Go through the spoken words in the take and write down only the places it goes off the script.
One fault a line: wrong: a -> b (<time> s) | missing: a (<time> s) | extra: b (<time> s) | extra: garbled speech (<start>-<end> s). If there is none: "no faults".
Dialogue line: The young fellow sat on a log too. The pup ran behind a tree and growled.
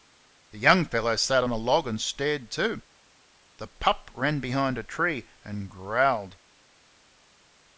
extra: and stared (1.9 s)